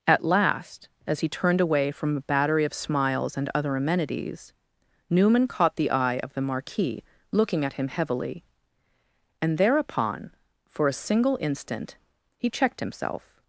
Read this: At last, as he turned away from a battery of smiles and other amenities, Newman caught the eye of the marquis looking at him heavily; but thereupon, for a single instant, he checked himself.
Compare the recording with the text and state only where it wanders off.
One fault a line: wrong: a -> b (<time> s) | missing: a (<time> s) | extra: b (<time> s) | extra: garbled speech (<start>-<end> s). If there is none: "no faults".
wrong: but -> and (9.4 s)